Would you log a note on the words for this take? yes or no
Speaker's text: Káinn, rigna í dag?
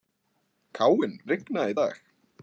no